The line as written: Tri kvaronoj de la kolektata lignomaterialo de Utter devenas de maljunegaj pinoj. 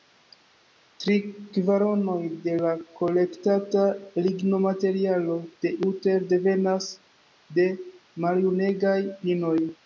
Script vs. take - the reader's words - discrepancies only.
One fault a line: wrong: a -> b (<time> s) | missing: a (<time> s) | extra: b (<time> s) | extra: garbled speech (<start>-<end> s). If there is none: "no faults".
no faults